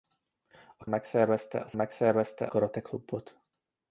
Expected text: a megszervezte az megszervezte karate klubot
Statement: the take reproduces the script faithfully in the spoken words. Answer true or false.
true